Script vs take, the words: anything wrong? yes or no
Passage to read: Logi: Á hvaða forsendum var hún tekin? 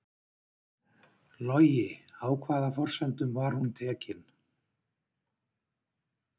no